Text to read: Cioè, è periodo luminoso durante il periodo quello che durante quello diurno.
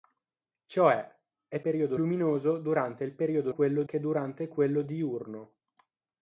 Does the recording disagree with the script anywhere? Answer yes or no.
no